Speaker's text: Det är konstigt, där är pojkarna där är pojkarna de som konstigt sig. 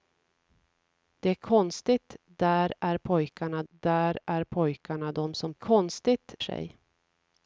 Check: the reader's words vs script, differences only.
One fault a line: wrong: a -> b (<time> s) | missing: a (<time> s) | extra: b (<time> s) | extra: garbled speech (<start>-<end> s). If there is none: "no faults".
no faults